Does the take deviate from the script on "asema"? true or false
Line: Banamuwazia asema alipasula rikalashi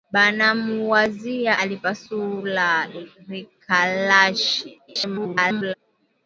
true